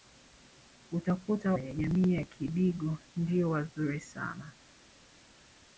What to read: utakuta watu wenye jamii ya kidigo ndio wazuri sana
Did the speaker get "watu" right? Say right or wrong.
wrong